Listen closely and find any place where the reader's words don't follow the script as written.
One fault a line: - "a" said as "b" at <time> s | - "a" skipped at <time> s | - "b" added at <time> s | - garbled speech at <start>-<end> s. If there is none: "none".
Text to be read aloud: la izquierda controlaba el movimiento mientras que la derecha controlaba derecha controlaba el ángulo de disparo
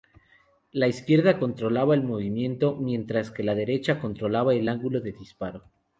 - "derecha controlaba" skipped at 4.5 s